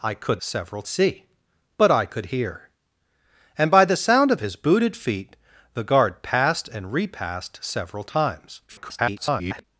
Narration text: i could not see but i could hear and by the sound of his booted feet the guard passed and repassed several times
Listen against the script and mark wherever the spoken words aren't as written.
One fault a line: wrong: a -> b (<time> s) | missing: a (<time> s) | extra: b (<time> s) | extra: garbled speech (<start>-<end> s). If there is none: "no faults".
wrong: not -> several (0.4 s)
extra: garbled speech (8.7-9.6 s)